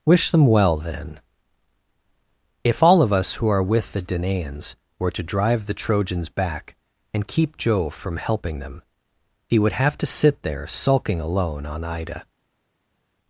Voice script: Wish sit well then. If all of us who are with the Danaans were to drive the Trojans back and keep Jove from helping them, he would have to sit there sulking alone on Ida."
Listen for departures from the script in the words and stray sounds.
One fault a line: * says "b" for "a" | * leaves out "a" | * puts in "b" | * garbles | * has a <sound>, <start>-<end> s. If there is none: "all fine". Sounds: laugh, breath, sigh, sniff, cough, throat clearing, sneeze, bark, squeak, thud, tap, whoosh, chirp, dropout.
* says "them" for "sit"